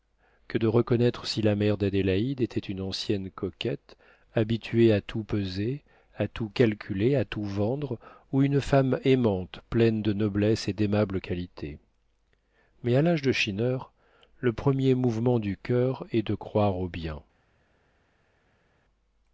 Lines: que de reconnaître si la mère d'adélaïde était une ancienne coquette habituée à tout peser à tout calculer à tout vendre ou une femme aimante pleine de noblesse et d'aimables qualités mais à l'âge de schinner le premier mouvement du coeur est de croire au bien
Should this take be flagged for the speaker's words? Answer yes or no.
no